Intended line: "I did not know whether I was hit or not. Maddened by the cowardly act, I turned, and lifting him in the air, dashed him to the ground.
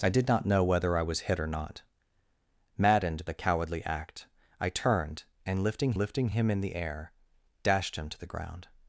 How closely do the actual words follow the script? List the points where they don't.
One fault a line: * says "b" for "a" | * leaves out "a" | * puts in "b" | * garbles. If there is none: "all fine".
* leaves out "by"
* puts in "lifting"